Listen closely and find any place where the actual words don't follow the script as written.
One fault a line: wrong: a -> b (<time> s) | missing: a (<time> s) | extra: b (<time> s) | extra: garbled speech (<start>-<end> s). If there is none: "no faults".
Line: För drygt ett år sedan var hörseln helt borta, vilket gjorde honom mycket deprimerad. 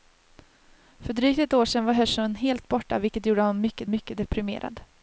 extra: mycket (3.9 s)